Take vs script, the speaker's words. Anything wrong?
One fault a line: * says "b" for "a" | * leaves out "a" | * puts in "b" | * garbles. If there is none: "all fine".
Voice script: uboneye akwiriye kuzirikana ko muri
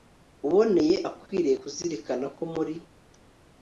all fine